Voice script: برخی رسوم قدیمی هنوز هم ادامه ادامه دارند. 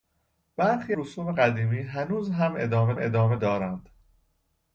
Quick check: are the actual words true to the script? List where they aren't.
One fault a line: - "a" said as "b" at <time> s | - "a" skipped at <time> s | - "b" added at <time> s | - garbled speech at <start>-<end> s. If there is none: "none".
none